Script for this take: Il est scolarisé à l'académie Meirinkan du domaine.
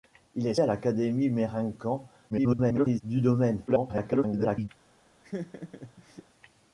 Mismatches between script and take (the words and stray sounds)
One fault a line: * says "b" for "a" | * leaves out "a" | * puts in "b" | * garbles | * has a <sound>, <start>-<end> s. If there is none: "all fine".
* leaves out "scolarisé"
* garbles
* garbles
* has a laugh, 5.2-6.2 s